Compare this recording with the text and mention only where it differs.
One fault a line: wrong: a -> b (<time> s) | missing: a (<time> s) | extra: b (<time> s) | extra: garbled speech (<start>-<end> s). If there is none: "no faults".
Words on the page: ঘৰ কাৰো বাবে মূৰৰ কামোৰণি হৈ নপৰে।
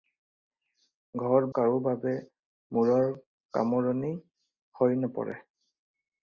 no faults